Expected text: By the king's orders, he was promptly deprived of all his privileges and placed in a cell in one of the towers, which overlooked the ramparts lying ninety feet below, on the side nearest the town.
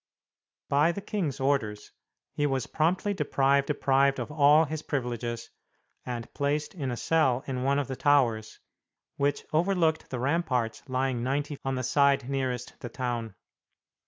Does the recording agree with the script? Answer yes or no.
no